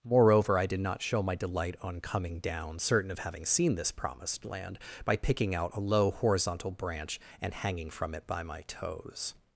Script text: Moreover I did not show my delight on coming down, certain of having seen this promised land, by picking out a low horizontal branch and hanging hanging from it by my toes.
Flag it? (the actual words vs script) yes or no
yes